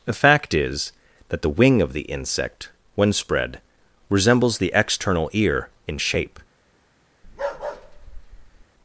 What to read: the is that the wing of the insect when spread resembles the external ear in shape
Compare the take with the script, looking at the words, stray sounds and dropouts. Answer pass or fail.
fail